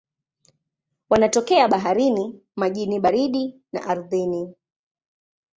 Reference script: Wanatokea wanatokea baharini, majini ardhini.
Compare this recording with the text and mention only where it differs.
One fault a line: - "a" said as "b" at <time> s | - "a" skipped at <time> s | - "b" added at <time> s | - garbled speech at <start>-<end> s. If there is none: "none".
- "wanatokea" skipped at 1.7 s
- "baridi na" added at 3.0 s